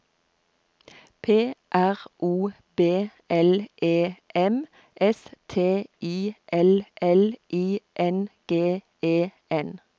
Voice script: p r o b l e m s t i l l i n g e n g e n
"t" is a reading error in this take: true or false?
false